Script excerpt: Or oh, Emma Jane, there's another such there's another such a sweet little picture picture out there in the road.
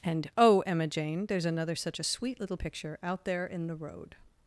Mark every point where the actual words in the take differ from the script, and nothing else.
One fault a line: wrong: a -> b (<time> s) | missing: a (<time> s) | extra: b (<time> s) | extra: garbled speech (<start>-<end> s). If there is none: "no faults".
wrong: Or -> And (0.0 s)
missing: there's another such (2.0 s)
missing: picture (3.0 s)